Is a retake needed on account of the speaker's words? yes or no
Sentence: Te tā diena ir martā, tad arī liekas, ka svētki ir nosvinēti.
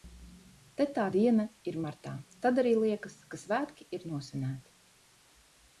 no